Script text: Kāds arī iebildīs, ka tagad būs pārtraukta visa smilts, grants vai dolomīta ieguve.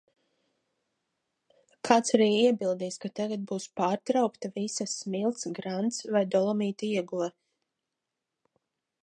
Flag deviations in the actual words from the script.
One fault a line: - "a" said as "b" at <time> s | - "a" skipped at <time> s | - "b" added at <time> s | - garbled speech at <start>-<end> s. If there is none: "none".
none